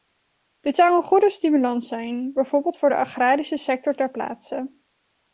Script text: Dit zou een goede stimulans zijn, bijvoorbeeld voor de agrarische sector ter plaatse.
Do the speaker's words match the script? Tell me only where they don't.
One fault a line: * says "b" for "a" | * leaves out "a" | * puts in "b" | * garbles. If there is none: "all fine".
all fine